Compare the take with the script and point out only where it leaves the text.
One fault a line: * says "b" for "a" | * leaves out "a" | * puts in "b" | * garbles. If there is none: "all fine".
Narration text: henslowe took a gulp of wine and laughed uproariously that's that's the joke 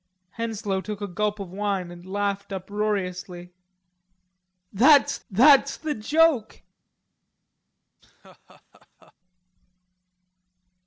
all fine